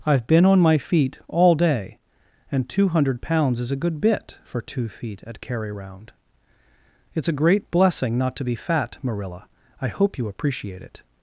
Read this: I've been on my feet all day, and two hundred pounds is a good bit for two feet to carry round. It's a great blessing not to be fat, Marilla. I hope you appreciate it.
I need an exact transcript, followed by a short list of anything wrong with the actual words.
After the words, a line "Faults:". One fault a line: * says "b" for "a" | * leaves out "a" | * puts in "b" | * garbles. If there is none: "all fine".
I've been on my feet all day, and two hundred pounds is a good bit for two feet at carry round. It's a great blessing not to be fat, Marilla. I hope you appreciate it.
Faults:
* says "at" for "to"